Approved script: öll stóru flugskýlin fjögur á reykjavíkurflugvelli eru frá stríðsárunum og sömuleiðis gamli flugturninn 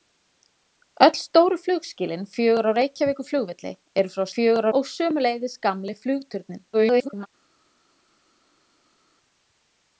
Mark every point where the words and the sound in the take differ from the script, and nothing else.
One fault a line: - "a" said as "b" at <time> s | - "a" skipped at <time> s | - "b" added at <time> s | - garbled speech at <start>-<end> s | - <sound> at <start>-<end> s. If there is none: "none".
- "stríðsárunum" said as "fjögur" at 4.4 s
- garbled speech at 6.7-7.3 s